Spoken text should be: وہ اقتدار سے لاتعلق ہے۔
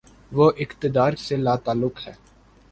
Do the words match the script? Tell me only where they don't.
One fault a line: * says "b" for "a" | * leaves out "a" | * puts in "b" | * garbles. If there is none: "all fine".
all fine